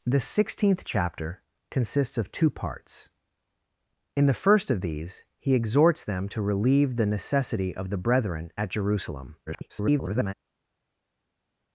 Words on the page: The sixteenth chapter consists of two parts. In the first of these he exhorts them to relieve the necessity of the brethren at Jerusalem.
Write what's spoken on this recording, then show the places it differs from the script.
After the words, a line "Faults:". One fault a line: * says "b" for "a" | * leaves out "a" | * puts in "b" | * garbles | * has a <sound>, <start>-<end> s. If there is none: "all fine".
The sixteenth chapter consists of two parts. In the first of these he exhorts them to relieve the necessity of the brethren at Jerusalem. [garbled]
Faults:
* garbles